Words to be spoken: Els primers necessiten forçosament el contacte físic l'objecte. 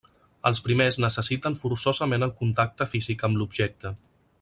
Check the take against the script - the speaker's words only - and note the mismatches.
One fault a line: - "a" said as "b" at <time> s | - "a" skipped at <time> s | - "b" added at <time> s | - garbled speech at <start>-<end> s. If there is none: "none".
- "amb" added at 3.3 s